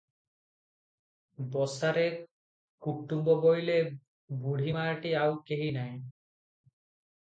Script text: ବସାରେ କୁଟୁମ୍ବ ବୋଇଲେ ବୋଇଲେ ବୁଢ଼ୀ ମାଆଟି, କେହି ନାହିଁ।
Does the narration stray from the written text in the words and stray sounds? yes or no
yes